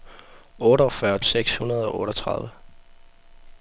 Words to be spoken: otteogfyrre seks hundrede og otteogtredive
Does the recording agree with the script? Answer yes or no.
yes